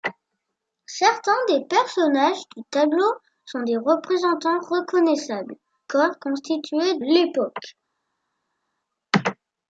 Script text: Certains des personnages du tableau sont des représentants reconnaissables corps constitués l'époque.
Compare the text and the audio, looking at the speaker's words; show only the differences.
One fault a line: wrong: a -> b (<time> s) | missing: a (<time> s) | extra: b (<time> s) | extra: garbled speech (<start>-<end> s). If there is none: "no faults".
no faults